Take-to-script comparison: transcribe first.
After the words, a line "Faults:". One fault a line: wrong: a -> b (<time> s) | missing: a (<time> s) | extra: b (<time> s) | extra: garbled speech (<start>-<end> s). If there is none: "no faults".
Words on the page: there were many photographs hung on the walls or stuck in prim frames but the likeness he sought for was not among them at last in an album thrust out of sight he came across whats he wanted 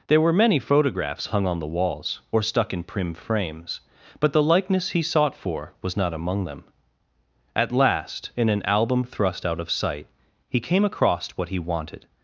there were many photographs hung on the walls or stuck in prim frames but the likeness he sought for was not among them at last in an album thrust out of sight he came across what he wanted
Faults:
wrong: whats -> what (11.3 s)